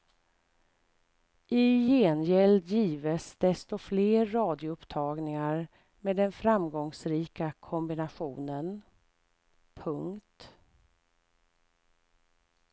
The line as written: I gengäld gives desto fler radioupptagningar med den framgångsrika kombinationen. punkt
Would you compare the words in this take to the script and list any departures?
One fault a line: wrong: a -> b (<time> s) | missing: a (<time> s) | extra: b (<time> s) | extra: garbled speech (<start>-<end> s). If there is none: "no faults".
no faults